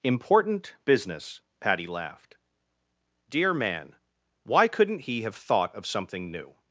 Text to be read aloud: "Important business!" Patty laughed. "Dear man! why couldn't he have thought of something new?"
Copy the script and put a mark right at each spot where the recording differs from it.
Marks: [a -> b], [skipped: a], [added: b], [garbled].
"Important business!" Patty laughed. "Dear man! why couldn't he have thought of something new?"